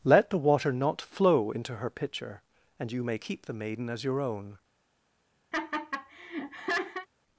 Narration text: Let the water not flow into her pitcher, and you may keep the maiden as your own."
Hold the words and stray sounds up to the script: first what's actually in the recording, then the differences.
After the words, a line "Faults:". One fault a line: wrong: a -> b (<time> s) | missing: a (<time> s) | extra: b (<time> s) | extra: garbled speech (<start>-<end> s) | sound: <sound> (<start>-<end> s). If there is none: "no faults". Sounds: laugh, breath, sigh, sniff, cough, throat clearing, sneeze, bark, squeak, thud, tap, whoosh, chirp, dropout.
Let the water not flow into her pitcher, and you may keep the maiden as your own."
Faults:
sound: laugh (5.5-7.1 s)